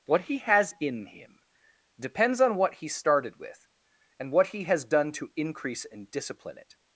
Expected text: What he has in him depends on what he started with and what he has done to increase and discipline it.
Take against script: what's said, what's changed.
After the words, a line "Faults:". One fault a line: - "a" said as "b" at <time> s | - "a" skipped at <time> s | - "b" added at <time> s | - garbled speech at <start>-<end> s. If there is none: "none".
What he has in him depends on what he started with and what he has done to increase and discipline it.
Faults:
none